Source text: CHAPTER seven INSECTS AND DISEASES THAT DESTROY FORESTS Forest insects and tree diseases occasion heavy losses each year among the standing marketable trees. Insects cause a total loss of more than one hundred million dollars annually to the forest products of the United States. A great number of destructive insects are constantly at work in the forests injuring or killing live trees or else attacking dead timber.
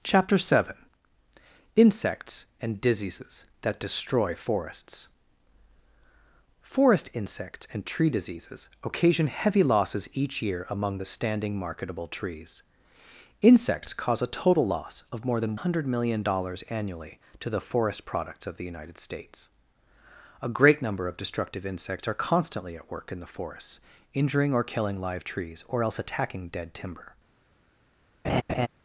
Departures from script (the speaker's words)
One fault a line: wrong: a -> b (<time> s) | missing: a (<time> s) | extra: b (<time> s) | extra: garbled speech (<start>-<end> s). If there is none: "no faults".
missing: one (15.6 s)